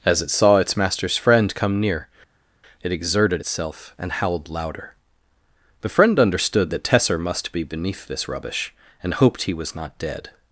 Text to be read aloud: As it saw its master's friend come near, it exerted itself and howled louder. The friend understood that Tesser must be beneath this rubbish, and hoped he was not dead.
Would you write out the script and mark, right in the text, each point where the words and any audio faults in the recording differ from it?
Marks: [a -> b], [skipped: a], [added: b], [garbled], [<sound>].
As it saw its master's friend come near, it exerted itself and howled louder. The friend understood that Tesser must be beneath this rubbish, and hoped he was not dead.